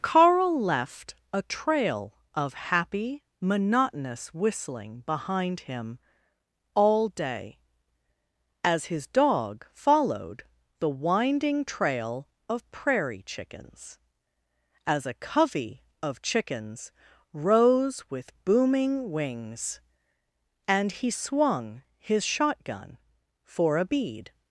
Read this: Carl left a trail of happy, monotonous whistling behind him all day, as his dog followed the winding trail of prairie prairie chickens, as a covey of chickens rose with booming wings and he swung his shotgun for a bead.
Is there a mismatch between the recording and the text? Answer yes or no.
yes